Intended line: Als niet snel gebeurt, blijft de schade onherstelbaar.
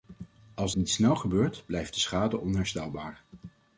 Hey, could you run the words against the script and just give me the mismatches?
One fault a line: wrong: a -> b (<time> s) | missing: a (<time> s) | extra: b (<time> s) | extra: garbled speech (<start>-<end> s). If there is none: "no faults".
no faults